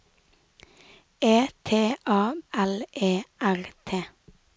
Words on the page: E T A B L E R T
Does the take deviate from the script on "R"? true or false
false